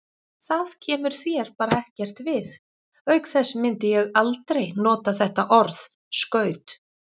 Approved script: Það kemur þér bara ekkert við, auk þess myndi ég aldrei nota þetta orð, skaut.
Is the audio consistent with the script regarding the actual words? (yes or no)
yes